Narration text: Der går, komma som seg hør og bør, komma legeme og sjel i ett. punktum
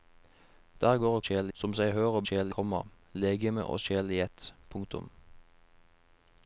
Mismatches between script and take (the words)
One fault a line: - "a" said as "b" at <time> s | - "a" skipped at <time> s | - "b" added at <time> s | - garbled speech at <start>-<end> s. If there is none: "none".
- "komma" said as "sjel" at 1.2 s
- "bør" said as "sjel" at 2.2 s